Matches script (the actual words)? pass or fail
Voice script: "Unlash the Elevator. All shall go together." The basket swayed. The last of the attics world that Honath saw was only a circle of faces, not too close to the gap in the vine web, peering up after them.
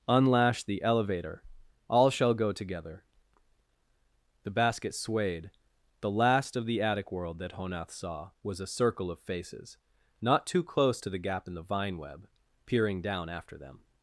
fail